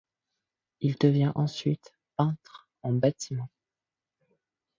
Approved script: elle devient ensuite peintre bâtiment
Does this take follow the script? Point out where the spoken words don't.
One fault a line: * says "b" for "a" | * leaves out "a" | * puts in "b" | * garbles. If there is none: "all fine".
* says "il" for "elle"
* puts in "en"